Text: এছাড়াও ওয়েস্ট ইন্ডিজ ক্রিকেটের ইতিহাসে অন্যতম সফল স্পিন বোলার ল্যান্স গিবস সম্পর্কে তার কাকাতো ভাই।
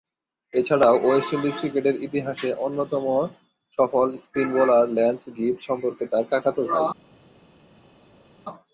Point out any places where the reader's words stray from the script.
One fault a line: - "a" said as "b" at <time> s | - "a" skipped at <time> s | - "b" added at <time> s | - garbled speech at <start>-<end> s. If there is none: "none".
none